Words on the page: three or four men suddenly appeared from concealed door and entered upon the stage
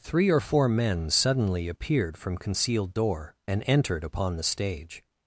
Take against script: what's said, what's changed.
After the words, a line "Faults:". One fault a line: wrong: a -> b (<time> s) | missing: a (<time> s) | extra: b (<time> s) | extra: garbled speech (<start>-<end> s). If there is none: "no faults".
three or four men suddenly appeared from concealed door and entered upon the stage
Faults:
no faults